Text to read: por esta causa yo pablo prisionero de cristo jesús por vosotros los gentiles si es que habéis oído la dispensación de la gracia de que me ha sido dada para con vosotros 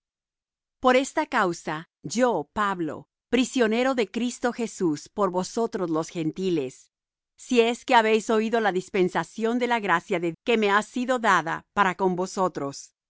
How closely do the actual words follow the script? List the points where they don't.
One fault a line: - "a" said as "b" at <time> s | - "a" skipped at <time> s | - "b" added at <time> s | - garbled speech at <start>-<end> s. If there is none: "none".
none